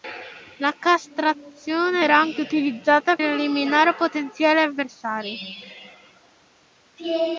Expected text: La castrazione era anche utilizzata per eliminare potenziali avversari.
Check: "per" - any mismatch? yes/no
yes